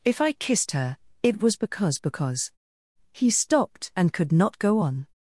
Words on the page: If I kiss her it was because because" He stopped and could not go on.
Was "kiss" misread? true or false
true